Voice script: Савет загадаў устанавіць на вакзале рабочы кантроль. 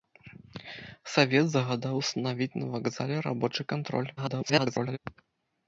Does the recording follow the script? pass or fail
fail